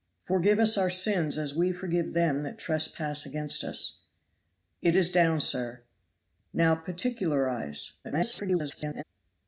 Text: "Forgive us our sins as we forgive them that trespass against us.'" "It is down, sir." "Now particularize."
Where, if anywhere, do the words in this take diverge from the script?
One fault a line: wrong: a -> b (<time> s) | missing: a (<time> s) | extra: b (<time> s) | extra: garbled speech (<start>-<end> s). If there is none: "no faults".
extra: garbled speech (8.0-9.0 s)